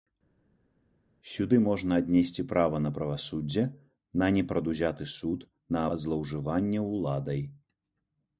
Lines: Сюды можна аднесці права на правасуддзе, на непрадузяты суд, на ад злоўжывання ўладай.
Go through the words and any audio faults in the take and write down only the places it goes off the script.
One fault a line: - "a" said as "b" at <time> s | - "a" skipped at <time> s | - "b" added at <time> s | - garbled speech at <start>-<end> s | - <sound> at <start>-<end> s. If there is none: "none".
none